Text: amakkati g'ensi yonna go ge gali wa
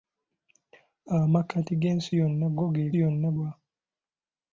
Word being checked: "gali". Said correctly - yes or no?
no